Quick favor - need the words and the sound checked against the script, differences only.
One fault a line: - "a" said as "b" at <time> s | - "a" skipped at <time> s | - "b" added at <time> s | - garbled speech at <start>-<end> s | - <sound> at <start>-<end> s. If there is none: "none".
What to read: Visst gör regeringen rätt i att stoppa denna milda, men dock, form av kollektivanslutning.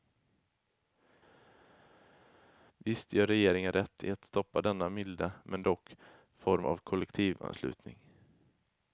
none